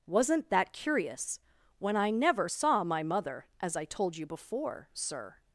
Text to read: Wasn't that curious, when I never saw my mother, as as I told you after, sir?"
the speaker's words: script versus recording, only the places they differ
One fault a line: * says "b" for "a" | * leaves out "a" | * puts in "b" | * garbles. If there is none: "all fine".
* leaves out "as"
* says "before" for "after"